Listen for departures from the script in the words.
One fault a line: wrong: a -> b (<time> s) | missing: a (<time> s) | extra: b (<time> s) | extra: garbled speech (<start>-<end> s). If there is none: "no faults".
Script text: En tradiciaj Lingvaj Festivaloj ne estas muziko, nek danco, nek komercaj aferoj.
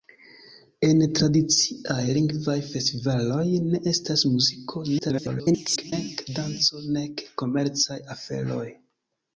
extra: garbled speech (5.0-5.9 s)